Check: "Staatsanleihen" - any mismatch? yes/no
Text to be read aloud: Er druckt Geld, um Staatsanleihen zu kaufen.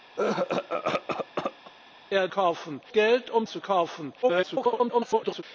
yes